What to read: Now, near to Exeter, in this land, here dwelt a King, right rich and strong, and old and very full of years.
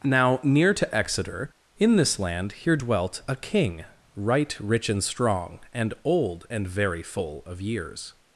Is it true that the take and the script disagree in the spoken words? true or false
false